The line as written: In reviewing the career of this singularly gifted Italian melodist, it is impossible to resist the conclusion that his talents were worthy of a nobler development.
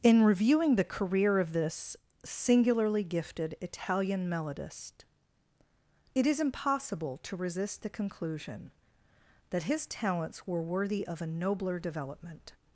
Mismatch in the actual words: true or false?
false